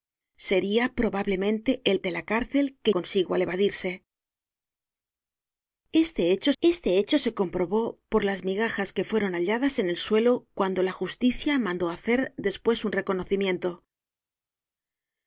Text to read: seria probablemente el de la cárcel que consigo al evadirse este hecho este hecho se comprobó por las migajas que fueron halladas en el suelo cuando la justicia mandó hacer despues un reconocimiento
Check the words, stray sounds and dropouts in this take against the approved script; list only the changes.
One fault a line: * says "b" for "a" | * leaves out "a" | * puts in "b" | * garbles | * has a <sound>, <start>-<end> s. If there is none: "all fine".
all fine